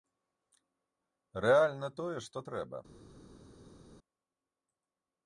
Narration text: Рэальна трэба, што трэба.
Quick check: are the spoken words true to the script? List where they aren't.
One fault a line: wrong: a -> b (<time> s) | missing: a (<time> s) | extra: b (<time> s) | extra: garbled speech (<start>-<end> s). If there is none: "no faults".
wrong: трэба -> тое (2.0 s)